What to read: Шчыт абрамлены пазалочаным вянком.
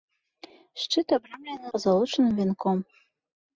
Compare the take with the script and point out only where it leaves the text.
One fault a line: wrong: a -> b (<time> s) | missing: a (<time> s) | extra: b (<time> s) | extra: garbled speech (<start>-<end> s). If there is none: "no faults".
no faults